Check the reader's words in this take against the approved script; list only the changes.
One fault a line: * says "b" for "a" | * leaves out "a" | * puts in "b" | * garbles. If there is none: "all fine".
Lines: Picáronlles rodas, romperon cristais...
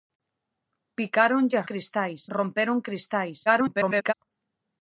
* says "cristais" for "rodas"
* garbles